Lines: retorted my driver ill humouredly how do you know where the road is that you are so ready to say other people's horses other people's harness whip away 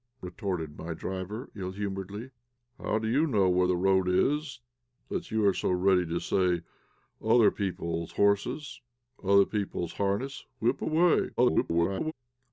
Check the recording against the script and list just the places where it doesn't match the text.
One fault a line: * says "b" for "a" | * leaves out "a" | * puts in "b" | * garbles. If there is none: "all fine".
* garbles